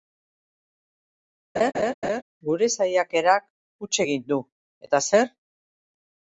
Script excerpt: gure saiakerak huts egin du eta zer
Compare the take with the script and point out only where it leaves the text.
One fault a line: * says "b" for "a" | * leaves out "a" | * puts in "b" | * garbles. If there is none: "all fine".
all fine